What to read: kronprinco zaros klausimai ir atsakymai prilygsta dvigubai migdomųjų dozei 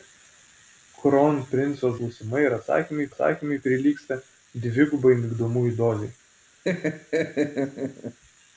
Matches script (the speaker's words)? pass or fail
fail